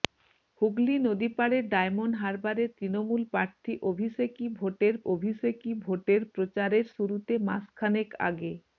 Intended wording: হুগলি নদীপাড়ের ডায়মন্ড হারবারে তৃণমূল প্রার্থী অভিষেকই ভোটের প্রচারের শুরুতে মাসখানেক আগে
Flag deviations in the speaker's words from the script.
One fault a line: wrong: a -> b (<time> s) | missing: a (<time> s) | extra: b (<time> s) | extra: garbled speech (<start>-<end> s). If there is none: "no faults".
extra: অভিষেকই ভোটের (5.1 s)